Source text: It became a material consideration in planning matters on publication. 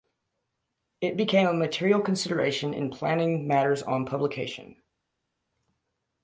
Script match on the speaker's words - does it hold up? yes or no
yes